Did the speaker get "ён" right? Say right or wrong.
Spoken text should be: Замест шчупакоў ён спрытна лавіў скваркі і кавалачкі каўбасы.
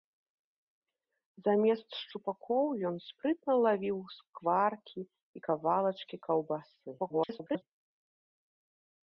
right